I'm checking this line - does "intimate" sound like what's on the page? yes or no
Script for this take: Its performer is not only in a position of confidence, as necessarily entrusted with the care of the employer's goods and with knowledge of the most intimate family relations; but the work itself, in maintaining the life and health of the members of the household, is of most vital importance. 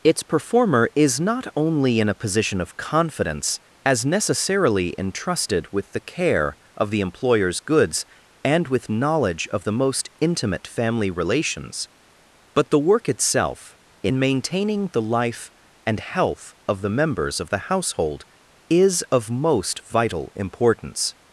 yes